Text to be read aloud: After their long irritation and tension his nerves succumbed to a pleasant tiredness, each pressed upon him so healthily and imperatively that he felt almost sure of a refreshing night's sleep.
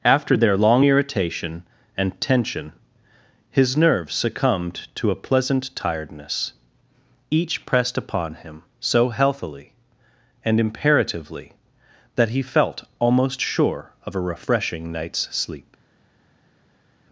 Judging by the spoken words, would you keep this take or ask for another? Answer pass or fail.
pass